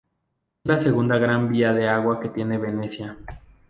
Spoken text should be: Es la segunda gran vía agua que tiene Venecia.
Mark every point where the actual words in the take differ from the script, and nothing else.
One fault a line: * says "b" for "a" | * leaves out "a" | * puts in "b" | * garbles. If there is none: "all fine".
* puts in "de"